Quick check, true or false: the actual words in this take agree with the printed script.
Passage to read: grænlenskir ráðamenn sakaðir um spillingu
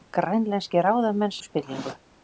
false